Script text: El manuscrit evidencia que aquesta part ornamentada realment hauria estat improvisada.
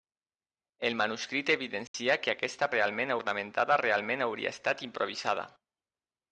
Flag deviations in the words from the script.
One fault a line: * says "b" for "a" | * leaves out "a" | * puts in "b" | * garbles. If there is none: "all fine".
* says "realment" for "part"